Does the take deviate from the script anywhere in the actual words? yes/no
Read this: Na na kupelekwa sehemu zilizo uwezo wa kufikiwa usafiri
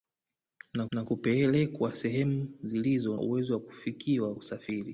no